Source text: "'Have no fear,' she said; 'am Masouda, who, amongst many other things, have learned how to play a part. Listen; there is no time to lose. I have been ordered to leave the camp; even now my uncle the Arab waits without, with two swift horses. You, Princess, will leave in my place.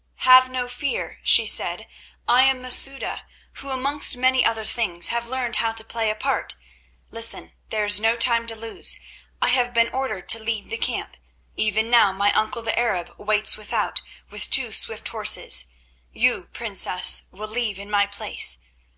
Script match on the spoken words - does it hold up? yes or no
no